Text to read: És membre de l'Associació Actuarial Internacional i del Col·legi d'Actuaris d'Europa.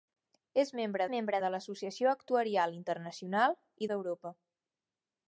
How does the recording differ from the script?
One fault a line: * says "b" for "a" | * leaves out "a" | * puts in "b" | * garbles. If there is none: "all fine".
* puts in "membre"
* leaves out "del Col·legi d'Actuaris"